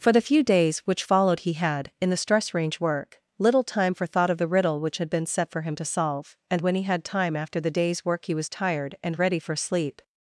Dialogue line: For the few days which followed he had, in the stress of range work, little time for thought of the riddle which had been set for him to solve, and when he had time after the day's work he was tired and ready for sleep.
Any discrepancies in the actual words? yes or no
yes